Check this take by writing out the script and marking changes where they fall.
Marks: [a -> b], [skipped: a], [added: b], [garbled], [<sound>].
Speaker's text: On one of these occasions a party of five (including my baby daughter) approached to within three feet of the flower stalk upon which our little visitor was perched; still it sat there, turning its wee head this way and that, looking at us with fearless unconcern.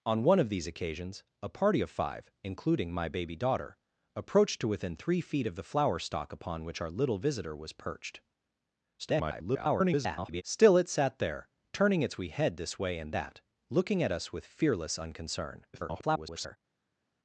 On one of these occasions a party of five (including my baby daughter) approached to within three feet of the flower stalk upon which our little visitor was perched; [garbled] still it sat there, turning its wee head this way and that, looking at us with fearless unconcern. [garbled]